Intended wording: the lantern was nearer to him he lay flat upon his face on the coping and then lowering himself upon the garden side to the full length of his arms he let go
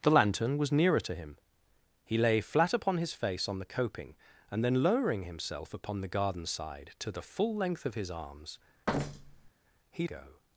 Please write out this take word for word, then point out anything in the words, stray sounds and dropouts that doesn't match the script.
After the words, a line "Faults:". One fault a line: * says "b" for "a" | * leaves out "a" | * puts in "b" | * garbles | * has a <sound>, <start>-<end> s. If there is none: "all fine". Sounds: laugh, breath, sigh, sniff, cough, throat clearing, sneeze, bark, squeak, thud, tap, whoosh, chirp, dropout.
the lantern was nearer to him he lay flat upon his face on the coping and then lowering himself upon the garden side to the full length of his arms he go
Faults:
* has a thud, 8.9-9.5 s
* leaves out "let"